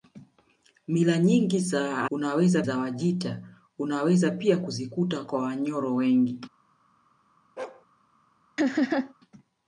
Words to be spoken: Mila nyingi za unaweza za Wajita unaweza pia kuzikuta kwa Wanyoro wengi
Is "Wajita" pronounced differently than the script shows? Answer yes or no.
no